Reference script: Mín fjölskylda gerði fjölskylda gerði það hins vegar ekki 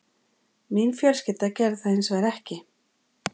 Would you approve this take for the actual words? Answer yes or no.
no